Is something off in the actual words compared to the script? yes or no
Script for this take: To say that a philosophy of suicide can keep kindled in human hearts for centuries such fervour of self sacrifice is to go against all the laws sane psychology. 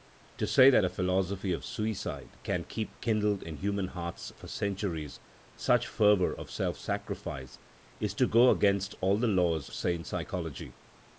no